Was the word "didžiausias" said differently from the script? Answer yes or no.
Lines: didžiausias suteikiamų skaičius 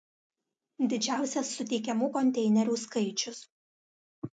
no